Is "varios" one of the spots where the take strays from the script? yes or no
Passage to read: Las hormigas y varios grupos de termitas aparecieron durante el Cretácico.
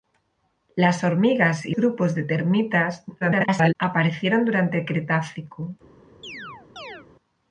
yes